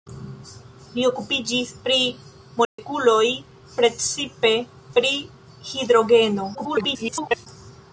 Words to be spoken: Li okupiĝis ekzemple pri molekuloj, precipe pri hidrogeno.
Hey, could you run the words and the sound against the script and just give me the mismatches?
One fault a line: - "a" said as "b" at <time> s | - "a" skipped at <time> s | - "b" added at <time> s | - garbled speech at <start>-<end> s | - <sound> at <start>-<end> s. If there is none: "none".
- "ekzemple" skipped at 1.7 s
- dropout at 2.6-2.8 s
- garbled speech at 6.5-7.5 s